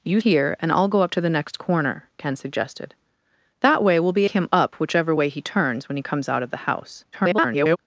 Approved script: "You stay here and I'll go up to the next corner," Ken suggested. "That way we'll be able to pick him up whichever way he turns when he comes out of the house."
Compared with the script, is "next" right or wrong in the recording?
right